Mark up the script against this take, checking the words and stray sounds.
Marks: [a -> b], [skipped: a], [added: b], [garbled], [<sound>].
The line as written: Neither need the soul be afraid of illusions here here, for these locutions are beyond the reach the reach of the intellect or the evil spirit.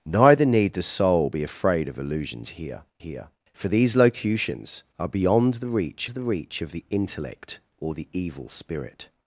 Neither need the soul be afraid of illusions here here, for these locutions are beyond the reach the reach of the intellect or the evil spirit.